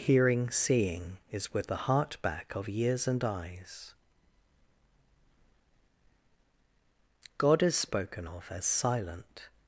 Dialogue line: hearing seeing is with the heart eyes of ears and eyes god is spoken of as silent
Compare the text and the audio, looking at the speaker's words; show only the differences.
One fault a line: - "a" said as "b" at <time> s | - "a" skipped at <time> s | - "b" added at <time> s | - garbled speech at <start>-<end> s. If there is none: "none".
- "eyes" said as "back" at 2.2 s